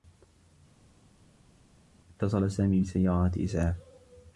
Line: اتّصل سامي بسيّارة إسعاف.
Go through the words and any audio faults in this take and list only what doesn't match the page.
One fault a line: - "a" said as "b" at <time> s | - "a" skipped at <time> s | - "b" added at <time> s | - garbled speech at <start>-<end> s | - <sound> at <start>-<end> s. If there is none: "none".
none